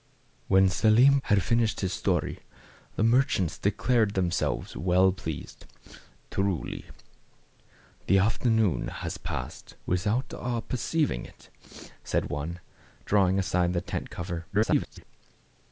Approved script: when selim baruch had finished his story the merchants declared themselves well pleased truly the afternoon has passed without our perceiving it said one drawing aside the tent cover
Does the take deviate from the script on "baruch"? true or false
true